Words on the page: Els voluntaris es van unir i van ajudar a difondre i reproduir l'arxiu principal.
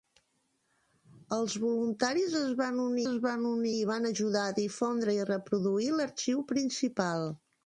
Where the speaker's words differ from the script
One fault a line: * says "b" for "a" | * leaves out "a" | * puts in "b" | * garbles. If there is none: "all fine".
* puts in "es van unir"